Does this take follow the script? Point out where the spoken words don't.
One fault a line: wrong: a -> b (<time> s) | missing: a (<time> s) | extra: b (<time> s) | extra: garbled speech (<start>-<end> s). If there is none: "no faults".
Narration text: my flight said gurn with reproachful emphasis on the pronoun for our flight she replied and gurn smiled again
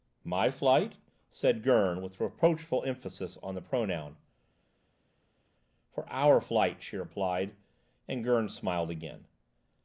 no faults